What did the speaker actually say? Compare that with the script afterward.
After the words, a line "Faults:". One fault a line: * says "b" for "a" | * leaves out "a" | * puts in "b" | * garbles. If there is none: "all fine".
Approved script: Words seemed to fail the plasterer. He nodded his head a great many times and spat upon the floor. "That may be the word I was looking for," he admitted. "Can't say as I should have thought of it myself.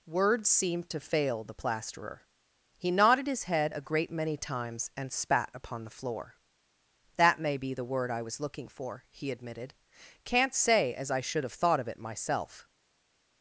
Words seemed to fail the plasterer. He nodded his head a great many times and spat upon the floor. "That may be the word I was looking for," he admitted. "Can't say as I should have thought of it myself.
Faults:
all fine